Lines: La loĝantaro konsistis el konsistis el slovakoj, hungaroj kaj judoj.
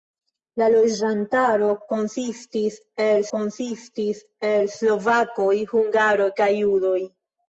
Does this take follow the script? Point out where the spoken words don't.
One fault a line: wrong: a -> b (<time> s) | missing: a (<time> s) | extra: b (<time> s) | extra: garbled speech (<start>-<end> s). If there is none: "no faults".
no faults